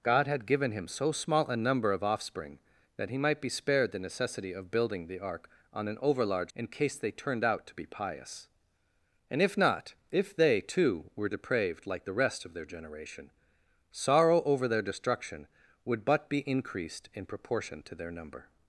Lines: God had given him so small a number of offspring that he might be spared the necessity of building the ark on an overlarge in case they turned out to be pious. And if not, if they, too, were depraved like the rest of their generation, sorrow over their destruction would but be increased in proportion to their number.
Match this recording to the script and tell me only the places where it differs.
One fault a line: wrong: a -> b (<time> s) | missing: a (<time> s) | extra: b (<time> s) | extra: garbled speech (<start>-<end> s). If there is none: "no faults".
no faults